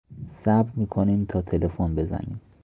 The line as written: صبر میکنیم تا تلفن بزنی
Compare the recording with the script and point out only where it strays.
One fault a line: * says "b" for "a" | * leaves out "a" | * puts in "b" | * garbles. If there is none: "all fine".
all fine